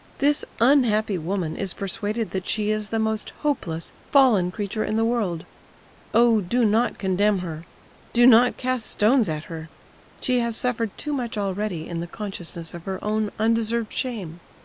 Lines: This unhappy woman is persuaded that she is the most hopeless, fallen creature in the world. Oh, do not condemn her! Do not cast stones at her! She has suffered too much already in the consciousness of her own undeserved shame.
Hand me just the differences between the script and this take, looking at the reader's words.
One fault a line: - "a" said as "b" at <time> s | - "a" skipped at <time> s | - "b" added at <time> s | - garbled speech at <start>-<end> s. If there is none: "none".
none